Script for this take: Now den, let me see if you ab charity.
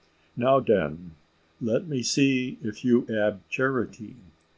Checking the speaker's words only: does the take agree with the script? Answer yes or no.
yes